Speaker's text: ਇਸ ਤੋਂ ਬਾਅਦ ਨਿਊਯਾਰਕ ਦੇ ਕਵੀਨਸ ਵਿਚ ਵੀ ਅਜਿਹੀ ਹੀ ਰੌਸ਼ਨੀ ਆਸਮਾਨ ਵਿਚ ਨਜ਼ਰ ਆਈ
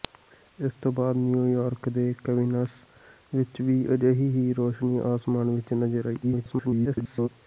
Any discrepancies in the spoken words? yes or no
yes